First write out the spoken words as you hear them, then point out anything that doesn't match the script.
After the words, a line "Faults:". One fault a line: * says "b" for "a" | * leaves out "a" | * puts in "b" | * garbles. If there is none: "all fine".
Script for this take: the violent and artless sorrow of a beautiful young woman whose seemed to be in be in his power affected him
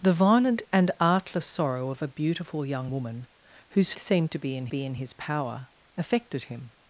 the violent and artless sorrow of a beautiful young woman whose seemed to be in be in his power affected him
Faults:
all fine